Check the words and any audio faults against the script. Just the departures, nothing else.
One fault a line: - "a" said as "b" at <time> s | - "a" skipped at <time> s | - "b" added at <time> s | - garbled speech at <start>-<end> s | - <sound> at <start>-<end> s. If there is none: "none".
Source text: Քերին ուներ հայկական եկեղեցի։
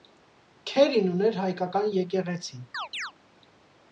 - chirp at 2.7-3.1 s